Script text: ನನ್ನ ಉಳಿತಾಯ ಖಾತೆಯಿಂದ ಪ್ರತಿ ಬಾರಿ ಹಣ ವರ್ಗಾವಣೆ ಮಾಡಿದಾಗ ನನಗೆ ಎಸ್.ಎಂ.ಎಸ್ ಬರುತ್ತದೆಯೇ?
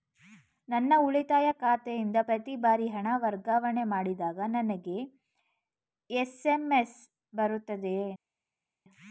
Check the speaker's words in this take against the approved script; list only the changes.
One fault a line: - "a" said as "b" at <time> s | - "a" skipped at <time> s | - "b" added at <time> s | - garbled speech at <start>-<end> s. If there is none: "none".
none